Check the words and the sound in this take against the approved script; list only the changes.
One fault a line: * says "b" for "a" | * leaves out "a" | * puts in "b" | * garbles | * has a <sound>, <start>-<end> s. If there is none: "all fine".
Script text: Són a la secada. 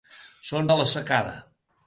all fine